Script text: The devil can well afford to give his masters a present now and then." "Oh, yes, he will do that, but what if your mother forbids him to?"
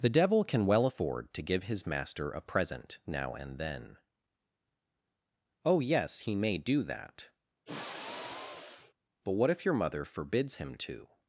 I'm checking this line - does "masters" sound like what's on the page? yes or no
no